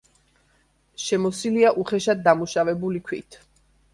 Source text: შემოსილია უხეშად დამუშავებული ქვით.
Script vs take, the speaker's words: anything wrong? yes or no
no